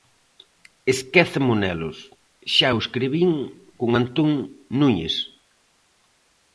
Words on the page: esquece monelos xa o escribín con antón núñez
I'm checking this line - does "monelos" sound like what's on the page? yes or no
yes